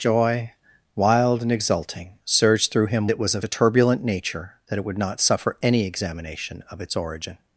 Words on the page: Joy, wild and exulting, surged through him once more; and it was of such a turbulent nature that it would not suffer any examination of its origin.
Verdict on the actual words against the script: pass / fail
fail